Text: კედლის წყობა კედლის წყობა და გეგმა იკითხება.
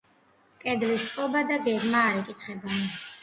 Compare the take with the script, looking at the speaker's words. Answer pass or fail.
fail